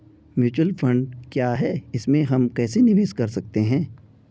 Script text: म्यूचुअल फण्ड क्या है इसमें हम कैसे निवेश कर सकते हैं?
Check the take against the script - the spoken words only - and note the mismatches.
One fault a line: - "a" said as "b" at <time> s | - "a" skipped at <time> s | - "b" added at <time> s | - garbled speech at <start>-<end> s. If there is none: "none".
none